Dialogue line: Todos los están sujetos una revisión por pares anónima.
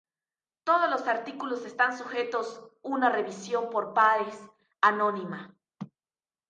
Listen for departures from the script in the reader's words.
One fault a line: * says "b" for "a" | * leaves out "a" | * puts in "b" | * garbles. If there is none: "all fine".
* puts in "artículos"